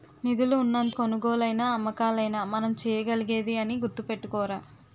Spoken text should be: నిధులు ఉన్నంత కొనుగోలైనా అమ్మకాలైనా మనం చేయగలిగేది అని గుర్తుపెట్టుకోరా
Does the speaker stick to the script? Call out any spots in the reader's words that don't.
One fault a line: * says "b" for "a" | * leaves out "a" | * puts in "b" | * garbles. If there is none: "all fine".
all fine